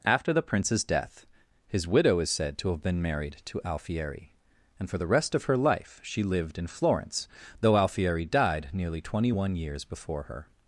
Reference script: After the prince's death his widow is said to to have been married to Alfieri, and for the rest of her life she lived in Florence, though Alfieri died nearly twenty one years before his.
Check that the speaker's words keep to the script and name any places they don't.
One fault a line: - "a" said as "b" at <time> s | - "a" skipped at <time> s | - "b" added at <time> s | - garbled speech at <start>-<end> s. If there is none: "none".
- "to" skipped at 2.7 s
- "his" said as "her" at 10.2 s